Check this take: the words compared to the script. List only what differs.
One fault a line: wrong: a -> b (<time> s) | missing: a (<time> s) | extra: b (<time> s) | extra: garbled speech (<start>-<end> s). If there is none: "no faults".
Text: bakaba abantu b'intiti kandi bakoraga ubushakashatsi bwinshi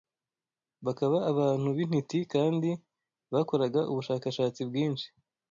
no faults